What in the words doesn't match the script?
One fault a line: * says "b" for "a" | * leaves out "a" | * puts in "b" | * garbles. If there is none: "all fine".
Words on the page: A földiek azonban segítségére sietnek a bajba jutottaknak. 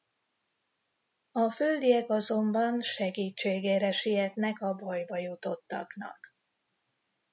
all fine